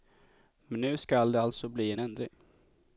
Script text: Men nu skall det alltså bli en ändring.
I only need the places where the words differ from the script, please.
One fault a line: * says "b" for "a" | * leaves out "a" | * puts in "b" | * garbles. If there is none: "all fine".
all fine